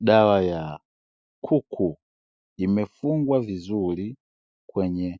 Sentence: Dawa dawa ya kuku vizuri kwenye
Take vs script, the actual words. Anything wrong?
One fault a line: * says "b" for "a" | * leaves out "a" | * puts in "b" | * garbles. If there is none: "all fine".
* leaves out "dawa"
* puts in "imefungwa"